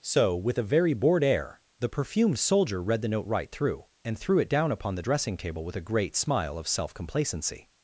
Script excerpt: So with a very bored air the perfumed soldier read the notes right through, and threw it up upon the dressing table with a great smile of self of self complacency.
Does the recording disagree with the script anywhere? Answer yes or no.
yes